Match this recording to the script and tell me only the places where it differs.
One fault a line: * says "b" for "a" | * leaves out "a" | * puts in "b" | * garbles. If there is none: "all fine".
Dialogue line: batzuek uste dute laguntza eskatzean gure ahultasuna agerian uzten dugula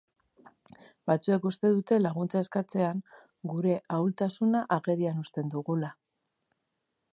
all fine